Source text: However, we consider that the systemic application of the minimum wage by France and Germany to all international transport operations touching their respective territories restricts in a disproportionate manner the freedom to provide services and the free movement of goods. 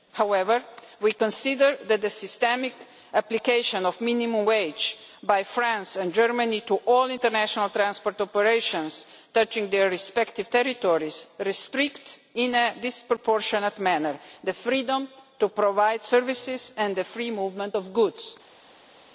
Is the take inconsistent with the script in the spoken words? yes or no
no